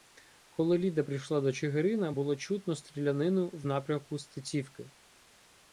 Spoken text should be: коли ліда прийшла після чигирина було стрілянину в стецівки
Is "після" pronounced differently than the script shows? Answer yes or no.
yes